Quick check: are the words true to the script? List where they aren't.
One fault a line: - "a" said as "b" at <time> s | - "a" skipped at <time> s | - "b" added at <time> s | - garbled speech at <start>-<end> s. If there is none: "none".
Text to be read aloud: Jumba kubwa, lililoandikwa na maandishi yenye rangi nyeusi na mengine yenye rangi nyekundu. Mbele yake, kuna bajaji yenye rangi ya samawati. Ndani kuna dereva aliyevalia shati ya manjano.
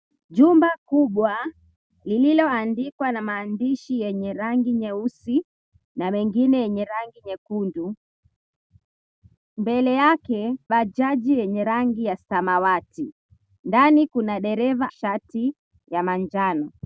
- "kuna" skipped at 10.6 s
- "aliyevalia" skipped at 14.9 s